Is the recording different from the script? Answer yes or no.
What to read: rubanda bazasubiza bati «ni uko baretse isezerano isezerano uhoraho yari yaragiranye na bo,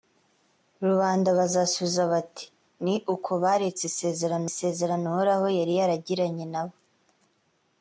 no